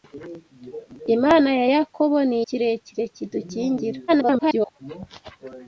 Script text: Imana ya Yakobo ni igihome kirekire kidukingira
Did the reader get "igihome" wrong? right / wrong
wrong